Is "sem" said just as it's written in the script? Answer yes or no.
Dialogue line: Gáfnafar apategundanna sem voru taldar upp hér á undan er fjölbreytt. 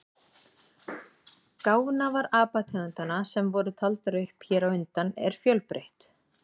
yes